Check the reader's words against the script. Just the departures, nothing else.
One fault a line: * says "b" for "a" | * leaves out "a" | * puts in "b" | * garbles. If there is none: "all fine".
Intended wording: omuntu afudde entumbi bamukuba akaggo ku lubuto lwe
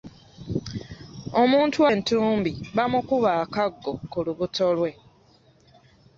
* leaves out "afudde"